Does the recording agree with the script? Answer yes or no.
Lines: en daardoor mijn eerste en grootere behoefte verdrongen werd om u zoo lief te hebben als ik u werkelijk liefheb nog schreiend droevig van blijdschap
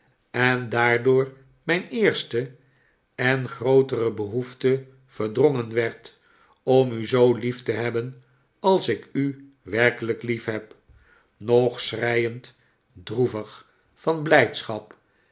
yes